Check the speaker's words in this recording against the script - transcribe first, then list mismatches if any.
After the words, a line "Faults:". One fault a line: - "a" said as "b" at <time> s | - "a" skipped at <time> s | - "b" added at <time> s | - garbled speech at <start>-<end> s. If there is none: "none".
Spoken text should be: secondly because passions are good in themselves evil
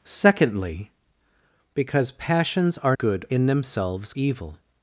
secondly because passions are good in themselves evil
Faults:
none